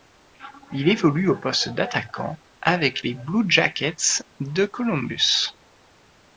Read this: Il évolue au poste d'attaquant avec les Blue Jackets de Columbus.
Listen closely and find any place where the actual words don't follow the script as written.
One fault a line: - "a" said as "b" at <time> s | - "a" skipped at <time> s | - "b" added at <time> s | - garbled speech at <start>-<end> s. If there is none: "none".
none